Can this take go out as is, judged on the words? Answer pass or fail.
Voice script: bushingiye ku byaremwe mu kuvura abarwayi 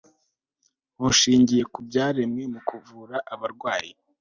pass